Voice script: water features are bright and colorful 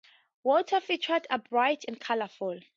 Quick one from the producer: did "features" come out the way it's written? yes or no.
yes